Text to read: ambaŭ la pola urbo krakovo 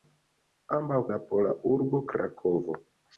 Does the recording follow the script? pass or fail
pass